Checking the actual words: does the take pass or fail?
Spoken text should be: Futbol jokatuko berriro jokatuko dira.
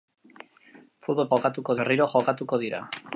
pass